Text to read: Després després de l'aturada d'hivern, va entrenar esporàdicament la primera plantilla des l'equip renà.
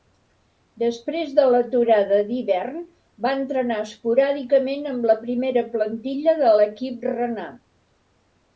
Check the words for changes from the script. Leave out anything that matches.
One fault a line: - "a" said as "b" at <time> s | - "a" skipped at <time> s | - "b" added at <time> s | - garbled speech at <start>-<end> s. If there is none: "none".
- "després" skipped at 1.4 s
- "amb" added at 5.0 s
- "des" said as "de" at 6.4 s